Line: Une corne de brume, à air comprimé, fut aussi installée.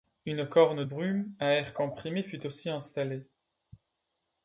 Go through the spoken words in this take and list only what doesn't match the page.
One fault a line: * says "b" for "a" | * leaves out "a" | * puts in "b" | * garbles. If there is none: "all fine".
* leaves out "de"